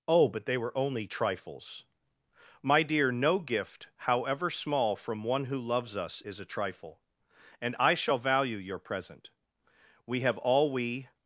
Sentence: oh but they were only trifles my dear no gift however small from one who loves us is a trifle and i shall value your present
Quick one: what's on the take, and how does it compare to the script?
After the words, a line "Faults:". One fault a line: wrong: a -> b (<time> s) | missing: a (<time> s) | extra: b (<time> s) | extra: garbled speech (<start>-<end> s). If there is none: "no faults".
oh but they were only trifles my dear no gift however small from one who loves us is a trifle and i shall value your present we have all we
Faults:
extra: we have all we (10.1 s)